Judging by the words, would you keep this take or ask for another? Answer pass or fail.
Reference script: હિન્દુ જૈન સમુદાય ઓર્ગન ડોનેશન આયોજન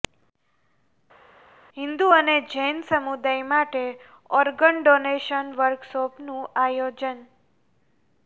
fail